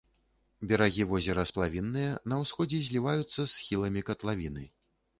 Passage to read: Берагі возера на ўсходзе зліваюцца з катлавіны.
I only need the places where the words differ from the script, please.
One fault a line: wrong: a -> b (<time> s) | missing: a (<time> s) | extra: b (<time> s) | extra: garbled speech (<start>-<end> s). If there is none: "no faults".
extra: сплавінныя (1.5 s)
extra: схіламі (3.6 s)